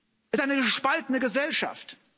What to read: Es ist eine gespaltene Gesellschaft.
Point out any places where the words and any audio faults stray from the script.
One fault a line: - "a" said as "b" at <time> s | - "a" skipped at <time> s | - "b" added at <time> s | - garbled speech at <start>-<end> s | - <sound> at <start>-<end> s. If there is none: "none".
none